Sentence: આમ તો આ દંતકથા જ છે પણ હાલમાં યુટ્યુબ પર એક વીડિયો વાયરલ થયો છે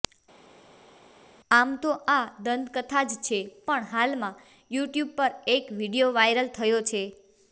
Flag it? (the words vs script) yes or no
no